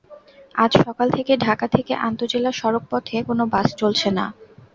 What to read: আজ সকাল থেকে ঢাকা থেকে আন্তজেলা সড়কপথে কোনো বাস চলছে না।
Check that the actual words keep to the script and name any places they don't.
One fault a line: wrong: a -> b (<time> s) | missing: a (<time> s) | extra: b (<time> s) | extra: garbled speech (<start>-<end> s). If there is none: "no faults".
no faults